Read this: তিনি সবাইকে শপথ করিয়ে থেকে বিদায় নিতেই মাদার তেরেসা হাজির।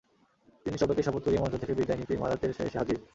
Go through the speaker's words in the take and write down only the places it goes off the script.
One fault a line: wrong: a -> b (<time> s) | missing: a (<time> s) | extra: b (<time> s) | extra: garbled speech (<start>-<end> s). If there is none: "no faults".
extra: মঞ্চ (1.4 s)
extra: এসে (2.7 s)